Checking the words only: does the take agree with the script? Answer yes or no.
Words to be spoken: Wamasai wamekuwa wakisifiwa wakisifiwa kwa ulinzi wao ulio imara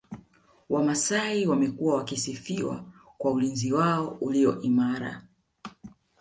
no